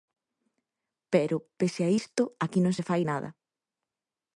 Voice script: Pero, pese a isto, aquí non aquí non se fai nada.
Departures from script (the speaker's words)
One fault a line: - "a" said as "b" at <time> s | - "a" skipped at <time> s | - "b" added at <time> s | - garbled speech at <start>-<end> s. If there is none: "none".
- "aquí non" skipped at 2.7 s